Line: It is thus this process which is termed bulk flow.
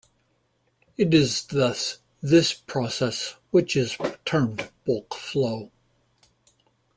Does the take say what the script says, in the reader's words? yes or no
yes